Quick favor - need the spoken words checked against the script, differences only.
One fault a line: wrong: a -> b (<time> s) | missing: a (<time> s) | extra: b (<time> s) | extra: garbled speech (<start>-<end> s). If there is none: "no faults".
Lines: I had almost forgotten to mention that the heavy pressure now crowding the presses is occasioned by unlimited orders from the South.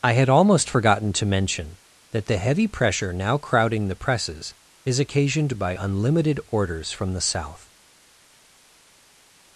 no faults